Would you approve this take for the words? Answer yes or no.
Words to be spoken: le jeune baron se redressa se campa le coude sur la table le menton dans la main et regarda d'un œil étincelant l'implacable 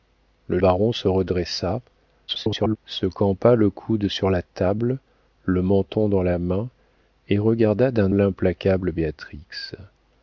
no